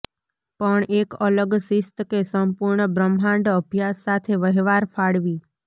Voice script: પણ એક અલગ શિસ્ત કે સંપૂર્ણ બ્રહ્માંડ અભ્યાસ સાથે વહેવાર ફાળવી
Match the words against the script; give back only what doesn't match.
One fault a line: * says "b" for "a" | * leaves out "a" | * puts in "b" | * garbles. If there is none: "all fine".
all fine